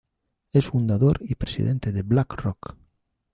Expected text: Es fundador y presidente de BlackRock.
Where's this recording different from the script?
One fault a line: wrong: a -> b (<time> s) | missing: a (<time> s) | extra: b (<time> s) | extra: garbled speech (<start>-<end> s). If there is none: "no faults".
no faults